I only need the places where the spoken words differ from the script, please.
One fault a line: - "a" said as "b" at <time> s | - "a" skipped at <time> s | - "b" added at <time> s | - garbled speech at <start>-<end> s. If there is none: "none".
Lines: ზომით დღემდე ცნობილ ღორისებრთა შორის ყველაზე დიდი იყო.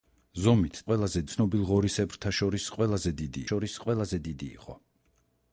- "დღემდე" said as "ყველაზე" at 0.9 s
- "შორის ყველაზე დიდი" added at 3.5 s